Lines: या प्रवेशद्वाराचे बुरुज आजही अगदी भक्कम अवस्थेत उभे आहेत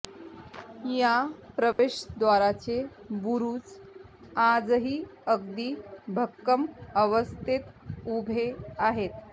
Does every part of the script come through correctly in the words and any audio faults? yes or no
no